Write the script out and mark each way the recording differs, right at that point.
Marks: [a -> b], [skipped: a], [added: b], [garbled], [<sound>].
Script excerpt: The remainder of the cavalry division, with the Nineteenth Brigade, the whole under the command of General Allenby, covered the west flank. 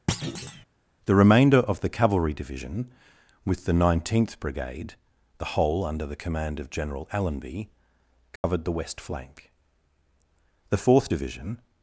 [thud] The remainder of the cavalry division, with the Nineteenth Brigade, the whole under the command of General Allenby, covered [dropout] the west flank. [added: The Fourth Division]